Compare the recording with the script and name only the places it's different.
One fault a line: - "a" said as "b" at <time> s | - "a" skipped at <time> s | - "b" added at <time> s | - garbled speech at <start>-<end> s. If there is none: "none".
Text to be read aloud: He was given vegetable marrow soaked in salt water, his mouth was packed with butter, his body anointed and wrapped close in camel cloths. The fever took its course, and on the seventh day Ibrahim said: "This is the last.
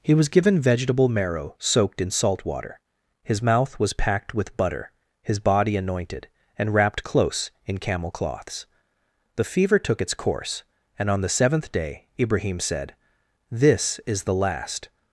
none